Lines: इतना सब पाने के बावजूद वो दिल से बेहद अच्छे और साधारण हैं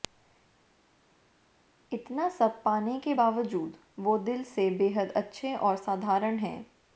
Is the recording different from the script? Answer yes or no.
no